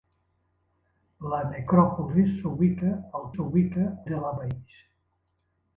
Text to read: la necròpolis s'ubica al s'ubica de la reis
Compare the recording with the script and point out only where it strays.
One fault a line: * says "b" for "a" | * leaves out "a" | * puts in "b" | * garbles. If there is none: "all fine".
all fine